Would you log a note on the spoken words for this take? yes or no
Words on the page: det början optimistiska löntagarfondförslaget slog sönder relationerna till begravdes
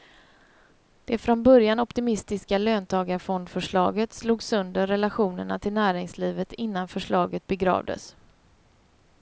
yes